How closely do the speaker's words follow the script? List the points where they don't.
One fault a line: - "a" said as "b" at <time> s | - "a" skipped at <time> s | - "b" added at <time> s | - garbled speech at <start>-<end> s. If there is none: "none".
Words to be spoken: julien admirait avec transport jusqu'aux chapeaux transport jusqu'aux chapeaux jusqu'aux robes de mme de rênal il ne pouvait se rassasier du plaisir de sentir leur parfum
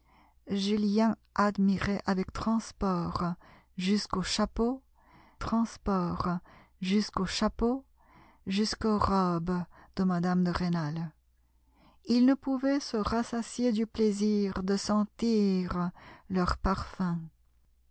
none